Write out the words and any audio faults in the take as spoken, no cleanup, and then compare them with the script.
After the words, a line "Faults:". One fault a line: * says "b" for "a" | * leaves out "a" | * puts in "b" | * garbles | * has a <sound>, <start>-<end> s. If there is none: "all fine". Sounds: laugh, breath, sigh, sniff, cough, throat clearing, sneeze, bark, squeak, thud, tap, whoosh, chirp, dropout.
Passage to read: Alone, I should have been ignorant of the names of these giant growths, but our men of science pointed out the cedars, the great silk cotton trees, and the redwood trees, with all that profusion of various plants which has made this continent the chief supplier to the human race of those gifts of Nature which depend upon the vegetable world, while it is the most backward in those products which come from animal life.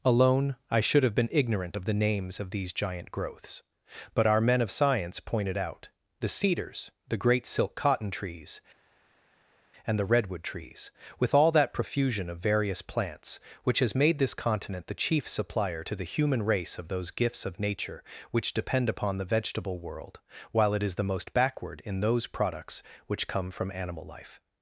Alone, I should have been ignorant of the names of these giant growths, but our men of science pointed out the cedars, the great silk cotton trees, and the redwood trees, with all that profusion of various plants which has made this continent the chief supplier to the human race of those gifts of Nature which depend upon the vegetable world, while it is the most backward in those products which come from animal life.
Faults:
all fine